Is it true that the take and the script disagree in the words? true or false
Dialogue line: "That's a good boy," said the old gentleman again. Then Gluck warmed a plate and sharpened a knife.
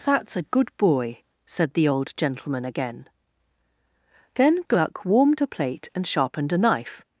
false